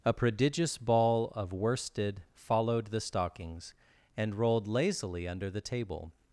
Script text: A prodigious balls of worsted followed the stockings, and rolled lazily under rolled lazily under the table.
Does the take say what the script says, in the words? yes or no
no